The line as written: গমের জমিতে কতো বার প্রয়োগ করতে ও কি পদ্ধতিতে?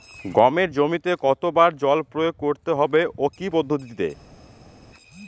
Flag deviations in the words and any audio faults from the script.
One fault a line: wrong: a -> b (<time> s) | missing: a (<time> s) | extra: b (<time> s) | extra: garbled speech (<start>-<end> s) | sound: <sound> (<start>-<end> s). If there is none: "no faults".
extra: জল (1.8 s)
extra: হবে (2.8 s)